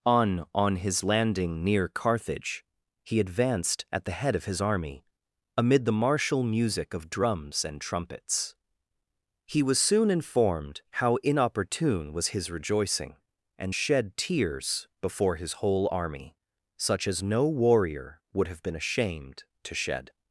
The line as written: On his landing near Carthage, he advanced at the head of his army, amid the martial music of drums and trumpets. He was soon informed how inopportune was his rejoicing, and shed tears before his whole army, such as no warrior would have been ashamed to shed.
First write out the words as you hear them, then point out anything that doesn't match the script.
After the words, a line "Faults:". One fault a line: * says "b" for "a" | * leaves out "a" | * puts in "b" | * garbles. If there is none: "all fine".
On on his landing near Carthage, he advanced at the head of his army, amid the martial music of drums and trumpets. He was soon informed how inopportune was his rejoicing, and shed tears before his whole army, such as no warrior would have been ashamed to shed.
Faults:
* puts in "on"